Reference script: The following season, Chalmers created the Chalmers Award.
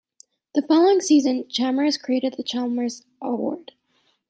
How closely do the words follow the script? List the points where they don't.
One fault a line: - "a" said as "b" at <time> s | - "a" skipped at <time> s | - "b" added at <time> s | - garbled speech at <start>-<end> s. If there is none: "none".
none